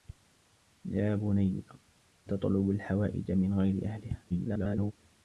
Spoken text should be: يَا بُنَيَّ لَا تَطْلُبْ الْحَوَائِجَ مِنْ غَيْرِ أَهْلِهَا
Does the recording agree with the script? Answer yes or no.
no